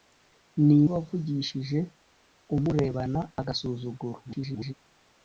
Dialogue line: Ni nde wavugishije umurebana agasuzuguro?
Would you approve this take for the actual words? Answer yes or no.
no